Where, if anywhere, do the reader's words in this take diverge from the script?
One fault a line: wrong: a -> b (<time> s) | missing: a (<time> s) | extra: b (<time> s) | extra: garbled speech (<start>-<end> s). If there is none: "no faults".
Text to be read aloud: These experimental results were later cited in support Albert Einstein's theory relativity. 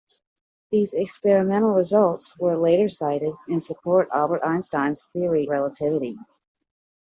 no faults